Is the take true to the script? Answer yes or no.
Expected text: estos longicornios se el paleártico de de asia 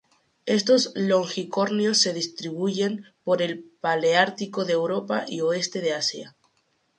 no